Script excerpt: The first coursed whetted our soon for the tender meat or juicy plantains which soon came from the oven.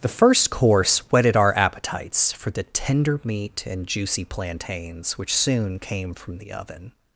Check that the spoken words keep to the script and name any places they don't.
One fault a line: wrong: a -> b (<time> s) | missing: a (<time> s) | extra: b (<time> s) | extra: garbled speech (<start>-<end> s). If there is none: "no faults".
wrong: coursed -> course (0.5 s)
wrong: soon -> appetites (1.6 s)
wrong: or -> and (3.7 s)